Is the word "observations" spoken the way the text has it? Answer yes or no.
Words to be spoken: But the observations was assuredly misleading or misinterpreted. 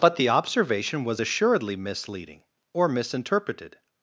no